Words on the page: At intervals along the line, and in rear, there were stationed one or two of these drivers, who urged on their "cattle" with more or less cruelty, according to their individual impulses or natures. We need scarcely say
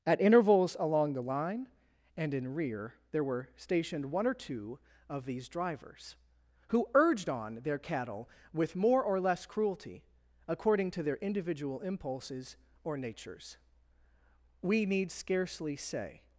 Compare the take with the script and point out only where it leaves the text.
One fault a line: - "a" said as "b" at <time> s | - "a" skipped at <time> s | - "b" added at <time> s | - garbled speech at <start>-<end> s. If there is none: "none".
none